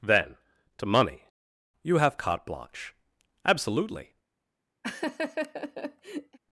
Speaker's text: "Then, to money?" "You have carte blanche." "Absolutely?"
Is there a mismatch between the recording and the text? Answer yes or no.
no